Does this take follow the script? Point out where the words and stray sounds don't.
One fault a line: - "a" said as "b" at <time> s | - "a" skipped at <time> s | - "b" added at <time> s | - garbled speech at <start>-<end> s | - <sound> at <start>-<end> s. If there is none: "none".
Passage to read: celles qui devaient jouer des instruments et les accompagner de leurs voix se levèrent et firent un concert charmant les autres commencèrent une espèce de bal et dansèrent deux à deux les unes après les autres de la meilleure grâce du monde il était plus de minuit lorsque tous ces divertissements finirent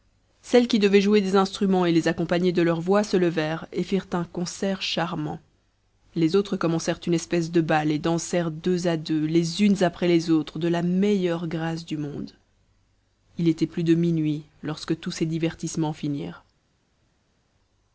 none